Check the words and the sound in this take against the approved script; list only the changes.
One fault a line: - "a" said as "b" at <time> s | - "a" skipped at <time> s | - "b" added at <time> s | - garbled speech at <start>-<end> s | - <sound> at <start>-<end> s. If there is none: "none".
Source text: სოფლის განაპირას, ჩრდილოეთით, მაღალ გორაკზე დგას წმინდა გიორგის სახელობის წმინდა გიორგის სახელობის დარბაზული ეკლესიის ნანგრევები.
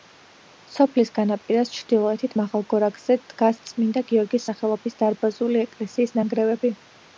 - "წმინდა გიორგის სახელობის" skipped at 5.0 s